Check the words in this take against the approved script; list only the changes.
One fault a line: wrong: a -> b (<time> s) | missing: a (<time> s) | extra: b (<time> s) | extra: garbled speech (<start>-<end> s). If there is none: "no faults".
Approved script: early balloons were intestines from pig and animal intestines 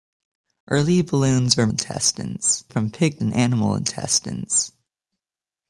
no faults